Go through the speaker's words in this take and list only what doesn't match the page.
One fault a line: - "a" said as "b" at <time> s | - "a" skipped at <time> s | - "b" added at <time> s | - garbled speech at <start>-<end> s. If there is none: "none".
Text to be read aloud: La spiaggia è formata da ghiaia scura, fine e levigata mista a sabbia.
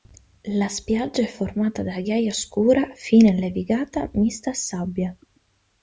none